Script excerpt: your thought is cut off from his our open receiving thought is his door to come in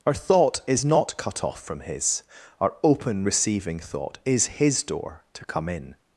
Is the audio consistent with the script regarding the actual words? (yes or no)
no